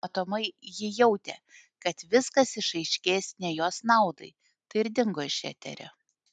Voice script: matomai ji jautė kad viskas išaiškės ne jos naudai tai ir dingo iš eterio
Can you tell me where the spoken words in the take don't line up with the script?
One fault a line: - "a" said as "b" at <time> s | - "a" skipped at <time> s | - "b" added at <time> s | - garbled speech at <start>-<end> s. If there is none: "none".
none